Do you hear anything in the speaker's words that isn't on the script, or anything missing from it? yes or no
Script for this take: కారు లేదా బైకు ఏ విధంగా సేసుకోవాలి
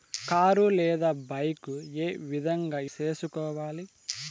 no